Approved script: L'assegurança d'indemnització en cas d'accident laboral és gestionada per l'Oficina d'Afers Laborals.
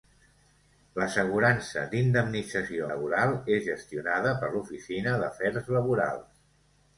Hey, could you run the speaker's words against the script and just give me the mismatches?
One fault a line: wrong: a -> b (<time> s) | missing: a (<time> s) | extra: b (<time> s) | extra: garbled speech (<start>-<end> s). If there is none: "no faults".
missing: en cas d'accident (2.9 s)